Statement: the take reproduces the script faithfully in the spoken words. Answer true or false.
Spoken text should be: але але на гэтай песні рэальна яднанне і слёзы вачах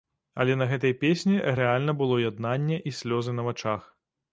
false